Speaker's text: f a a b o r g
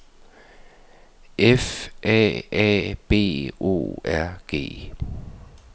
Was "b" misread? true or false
false